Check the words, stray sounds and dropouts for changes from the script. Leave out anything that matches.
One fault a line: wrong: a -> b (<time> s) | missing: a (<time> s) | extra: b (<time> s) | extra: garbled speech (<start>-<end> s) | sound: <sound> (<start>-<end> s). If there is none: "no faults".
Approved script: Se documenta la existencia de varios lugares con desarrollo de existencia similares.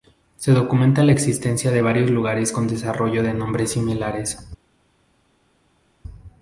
wrong: existencia -> nombres (3.3 s)